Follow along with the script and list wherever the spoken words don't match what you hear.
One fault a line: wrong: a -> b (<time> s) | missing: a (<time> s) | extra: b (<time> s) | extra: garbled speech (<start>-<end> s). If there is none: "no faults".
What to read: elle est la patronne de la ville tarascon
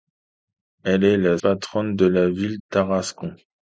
no faults